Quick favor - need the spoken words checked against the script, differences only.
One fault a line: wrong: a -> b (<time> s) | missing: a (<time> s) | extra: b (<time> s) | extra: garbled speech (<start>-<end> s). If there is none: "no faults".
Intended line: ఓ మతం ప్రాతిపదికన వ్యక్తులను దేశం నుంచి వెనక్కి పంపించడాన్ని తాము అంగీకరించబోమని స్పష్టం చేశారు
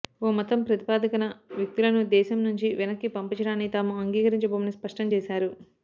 no faults